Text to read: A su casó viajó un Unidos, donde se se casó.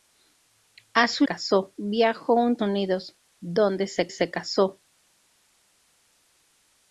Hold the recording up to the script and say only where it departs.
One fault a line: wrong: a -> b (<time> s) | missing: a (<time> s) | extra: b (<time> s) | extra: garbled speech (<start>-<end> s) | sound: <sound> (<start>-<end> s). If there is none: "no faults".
no faults